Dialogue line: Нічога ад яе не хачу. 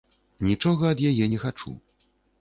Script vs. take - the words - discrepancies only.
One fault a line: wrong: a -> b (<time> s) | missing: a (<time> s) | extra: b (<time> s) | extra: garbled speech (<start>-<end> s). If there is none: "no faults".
no faults